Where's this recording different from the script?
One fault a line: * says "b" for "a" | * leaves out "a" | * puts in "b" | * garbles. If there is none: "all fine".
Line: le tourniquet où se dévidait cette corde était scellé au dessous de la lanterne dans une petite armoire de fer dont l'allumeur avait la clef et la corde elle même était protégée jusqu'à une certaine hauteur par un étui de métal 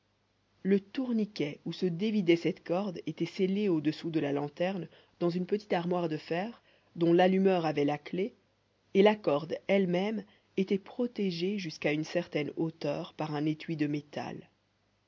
all fine